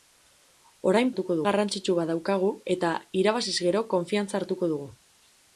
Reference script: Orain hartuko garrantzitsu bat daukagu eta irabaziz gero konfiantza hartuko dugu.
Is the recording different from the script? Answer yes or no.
no